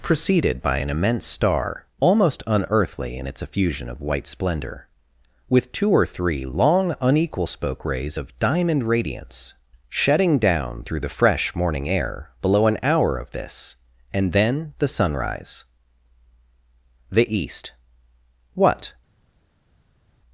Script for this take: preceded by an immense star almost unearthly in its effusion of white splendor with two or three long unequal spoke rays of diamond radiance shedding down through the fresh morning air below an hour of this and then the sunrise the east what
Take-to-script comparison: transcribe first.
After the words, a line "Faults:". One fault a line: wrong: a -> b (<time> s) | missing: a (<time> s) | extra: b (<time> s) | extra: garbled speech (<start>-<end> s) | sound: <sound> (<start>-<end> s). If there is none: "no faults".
preceded by an immense star almost unearthly in its effusion of white splendor with two or three long unequal spoke rays of diamond radiance shedding down through the fresh morning air below an hour of this and then the sunrise the east what
Faults:
no faults